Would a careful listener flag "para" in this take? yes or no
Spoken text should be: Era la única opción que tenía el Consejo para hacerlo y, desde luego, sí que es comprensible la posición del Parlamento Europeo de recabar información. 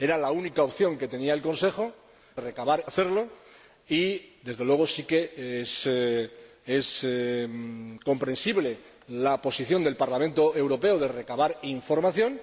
yes